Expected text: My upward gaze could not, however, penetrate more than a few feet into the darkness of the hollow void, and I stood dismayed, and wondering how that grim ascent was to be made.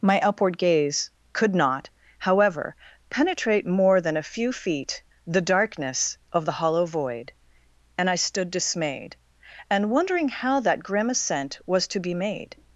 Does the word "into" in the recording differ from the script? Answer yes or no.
yes